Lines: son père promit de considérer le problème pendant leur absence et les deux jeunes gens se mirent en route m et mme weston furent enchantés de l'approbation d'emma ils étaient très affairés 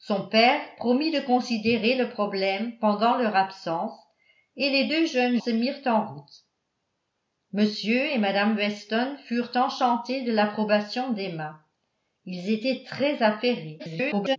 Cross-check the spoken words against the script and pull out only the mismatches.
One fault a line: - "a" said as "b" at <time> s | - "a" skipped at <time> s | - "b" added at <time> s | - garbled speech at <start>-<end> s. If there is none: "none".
- "gens" skipped at 5.4 s
- garbled speech at 13.8-14.4 s